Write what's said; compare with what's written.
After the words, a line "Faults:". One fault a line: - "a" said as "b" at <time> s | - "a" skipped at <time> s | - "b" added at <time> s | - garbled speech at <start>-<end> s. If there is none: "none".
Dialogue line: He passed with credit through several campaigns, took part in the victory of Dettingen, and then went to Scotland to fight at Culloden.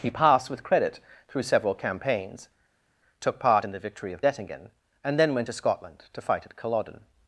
He passed with credit through several campaigns, took part in the victory of Dettingen, and then went to Scotland to fight at Culloden.
Faults:
none